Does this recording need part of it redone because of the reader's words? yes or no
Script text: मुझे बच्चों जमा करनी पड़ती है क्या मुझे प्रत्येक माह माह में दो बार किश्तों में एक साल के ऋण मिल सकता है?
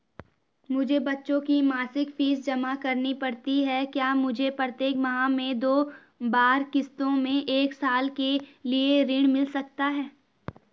yes